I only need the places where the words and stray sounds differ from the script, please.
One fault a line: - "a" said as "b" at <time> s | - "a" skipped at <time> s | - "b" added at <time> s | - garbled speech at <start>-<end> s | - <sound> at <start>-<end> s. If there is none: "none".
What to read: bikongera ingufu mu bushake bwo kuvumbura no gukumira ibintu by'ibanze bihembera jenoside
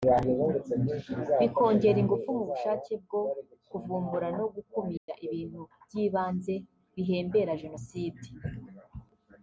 - dropout at 5.0-5.1 s